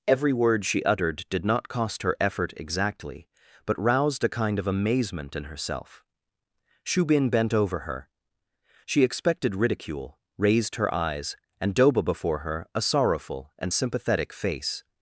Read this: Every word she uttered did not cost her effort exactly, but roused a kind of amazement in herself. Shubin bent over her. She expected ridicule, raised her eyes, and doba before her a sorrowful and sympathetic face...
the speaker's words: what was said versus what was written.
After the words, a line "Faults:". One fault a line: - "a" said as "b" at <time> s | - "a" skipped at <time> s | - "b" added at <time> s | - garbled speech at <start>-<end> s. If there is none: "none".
Every word she uttered did not cost her effort exactly, but roused a kind of amazement in herself. Shubin bent over her. She expected ridicule, raised her eyes, and doba before her a sorrowful and sympathetic face...
Faults:
none